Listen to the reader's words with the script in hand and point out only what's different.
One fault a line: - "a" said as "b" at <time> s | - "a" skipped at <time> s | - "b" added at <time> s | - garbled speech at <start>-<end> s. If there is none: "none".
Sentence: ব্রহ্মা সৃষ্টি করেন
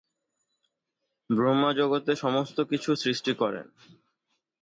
- "জগতে সমস্ত কিছু" added at 1.7 s